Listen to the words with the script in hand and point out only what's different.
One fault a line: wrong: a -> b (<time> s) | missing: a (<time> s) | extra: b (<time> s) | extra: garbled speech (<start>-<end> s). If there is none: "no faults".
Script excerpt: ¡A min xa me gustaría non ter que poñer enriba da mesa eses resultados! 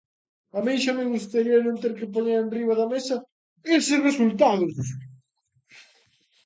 no faults